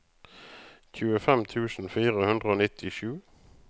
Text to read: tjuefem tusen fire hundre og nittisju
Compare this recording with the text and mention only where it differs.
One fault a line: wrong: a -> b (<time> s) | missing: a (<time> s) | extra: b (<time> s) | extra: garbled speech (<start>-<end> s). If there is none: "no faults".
no faults